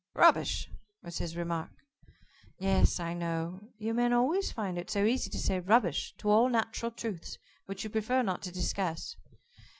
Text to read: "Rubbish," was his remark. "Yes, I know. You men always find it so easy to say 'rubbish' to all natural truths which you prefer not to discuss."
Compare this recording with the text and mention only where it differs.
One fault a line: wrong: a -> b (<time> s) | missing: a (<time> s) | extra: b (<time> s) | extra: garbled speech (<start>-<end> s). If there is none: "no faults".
no faults